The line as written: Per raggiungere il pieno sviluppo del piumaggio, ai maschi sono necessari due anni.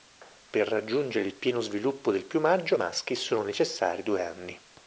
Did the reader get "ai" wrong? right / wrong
wrong